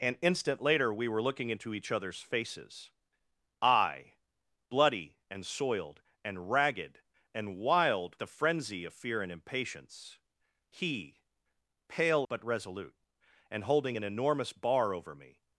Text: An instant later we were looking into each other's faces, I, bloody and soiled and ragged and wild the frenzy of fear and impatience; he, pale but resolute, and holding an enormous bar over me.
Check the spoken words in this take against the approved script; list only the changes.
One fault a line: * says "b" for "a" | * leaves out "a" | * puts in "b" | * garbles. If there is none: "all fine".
all fine